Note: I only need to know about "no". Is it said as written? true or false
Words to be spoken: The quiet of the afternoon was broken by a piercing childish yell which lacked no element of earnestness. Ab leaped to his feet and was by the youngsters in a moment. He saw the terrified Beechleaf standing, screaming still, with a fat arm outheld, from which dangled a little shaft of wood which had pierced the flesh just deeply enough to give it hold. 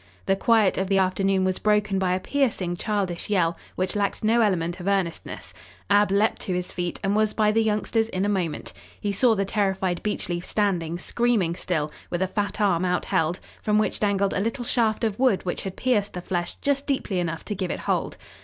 true